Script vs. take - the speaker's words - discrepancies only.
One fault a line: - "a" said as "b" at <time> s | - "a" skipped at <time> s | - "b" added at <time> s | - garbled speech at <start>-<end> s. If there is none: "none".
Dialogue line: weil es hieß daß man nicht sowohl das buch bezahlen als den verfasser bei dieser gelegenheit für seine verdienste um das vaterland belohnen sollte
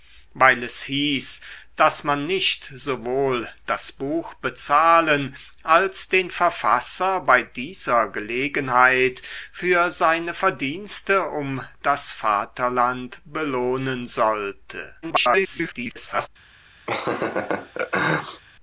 - garbled speech at 15.0-16.3 s